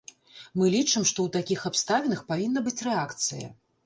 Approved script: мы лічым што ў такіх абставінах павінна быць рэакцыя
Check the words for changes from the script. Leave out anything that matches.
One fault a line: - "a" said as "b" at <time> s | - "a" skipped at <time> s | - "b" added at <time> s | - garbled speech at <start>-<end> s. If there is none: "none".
none